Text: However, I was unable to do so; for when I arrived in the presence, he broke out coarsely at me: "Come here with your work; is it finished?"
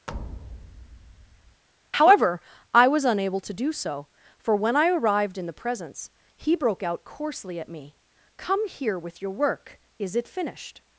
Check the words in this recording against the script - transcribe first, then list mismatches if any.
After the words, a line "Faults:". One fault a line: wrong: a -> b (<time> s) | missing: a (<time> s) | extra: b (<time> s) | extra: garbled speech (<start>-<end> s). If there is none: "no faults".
However, I was unable to do so; for when I arrived in the presence, he broke out coarsely at me: "Come here with your work; is it finished?"
Faults:
no faults